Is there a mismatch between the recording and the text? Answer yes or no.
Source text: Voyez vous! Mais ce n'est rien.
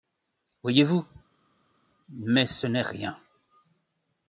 no